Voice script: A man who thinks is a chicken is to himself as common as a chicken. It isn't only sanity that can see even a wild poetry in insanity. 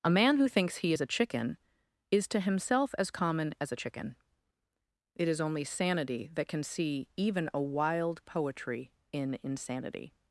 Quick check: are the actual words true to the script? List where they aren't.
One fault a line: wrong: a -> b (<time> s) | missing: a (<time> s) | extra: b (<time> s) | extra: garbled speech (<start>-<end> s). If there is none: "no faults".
extra: he (0.8 s)
wrong: isn't -> is (5.3 s)